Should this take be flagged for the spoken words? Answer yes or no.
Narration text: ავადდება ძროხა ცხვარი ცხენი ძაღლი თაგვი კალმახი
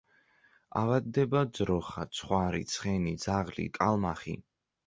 yes